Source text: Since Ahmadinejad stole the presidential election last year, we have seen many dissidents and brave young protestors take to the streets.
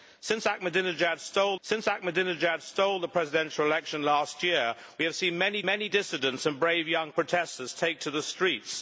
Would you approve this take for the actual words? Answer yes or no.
no